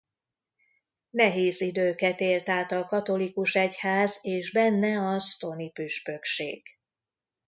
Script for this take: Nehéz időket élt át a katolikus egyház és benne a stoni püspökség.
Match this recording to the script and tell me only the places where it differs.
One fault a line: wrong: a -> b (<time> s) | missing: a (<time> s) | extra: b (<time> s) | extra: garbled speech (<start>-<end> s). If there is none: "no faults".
no faults